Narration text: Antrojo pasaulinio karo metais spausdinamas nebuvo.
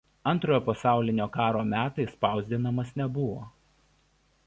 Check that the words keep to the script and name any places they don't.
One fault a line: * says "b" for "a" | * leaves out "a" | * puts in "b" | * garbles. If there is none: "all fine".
all fine